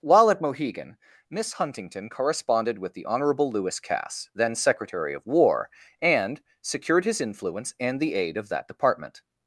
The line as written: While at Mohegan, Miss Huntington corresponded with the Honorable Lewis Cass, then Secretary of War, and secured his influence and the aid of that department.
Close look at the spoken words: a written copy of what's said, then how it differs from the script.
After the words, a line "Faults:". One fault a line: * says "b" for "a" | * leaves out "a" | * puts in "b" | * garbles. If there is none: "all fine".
While at Mohegan, Miss Huntington corresponded with the Honorable Lewis Cass, then Secretary of War, and secured his influence and the aid of that department.
Faults:
all fine